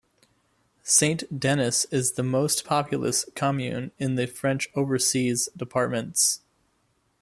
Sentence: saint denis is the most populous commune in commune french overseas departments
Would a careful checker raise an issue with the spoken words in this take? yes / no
yes